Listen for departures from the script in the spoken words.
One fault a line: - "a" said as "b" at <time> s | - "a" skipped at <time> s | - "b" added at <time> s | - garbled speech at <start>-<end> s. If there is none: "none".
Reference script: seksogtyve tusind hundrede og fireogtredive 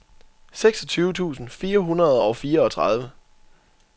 - "fire" added at 1.5 s